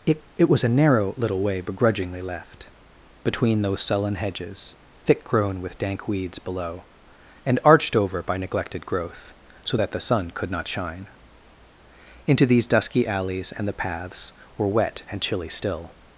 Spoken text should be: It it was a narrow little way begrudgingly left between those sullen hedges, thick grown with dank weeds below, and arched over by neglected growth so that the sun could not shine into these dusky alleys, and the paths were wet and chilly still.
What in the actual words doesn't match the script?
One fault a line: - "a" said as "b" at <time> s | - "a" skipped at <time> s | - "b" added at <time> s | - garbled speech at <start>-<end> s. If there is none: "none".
none